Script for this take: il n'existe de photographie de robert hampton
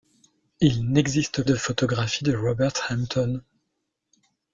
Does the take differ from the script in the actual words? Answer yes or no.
no